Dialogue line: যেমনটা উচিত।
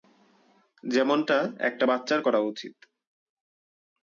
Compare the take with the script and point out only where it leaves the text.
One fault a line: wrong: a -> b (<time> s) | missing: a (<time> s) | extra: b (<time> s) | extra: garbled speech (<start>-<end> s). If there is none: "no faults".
extra: একটা বাচ্চার করা (1.6 s)